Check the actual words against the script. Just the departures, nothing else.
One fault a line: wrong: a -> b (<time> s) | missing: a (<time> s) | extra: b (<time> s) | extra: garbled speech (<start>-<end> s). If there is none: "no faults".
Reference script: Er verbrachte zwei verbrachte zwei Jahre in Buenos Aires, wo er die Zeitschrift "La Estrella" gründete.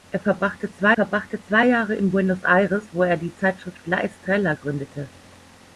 no faults